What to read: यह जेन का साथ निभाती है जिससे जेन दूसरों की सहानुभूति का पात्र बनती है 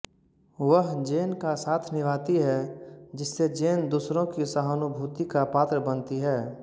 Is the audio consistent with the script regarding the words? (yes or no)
no